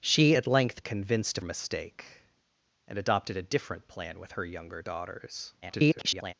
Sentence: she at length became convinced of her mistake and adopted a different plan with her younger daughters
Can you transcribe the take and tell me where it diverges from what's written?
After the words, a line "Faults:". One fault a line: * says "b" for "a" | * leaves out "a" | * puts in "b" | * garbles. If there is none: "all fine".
she at length convinced of mistake and adopted a different plan with her younger daughters [garbled]
Faults:
* leaves out "became"
* leaves out "her"
* garbles